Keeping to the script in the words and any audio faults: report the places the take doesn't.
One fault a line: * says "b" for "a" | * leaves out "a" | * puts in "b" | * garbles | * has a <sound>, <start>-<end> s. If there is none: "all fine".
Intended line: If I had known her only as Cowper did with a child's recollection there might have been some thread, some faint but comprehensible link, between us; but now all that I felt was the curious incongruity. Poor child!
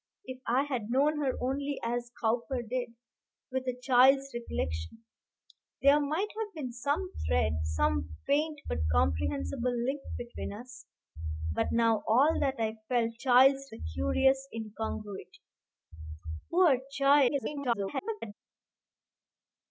* says "child's" for "was"
* garbles